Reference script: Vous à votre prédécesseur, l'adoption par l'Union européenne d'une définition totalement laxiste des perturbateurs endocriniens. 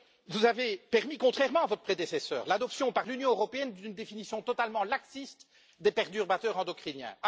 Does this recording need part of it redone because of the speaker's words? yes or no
yes